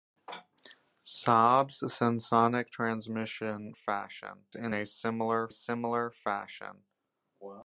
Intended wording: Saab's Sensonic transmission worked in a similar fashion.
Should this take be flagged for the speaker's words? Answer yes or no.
yes